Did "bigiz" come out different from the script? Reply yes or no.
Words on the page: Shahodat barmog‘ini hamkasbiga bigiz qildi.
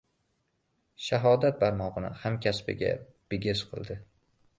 no